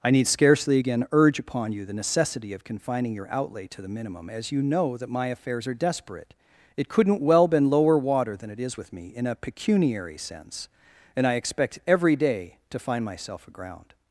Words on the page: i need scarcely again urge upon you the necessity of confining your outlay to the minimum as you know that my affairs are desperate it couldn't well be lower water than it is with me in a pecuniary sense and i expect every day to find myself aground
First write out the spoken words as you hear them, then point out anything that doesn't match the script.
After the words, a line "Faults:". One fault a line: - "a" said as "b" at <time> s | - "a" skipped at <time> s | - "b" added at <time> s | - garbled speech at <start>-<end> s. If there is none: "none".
i need scarcely again urge upon you the necessity of confining your outlay to the minimum as you know that my affairs are desperate it couldn't well been lower water than it is with me in a pecuniary sense and i expect every day to find myself aground
Faults:
- "be" said as "been" at 7.5 s